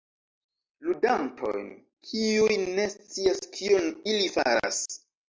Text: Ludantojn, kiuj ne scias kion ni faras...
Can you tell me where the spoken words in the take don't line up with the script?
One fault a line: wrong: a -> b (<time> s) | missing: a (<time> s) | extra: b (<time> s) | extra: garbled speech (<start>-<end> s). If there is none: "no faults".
wrong: ni -> ili (4.1 s)